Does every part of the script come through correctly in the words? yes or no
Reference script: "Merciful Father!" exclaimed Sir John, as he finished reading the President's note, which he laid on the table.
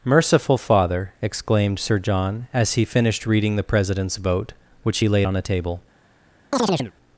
no